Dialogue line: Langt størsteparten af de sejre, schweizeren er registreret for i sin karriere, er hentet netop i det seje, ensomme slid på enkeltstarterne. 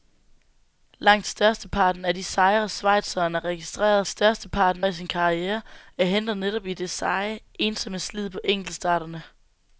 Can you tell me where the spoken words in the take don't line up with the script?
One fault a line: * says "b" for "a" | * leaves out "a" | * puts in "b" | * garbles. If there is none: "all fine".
* says "størsteparten" for "for"